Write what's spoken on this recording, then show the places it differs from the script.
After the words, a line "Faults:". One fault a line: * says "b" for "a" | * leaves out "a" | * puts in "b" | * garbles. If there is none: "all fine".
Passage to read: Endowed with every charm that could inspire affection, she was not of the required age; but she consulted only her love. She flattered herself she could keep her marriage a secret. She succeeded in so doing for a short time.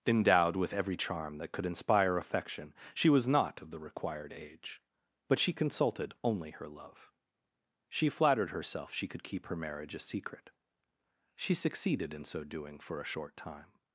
Endowed with every charm that could inspire affection, she was not of the required age; but she consulted only her love. She flattered herself she could keep her marriage a secret. She succeeded in so doing for a short time.
Faults:
all fine